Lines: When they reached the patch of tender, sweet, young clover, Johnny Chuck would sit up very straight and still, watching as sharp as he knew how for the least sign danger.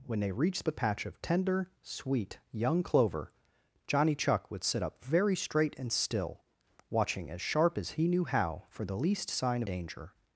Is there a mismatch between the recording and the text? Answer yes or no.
no